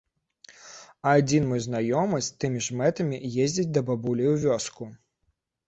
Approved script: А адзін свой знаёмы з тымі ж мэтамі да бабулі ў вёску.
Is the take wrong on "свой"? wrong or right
wrong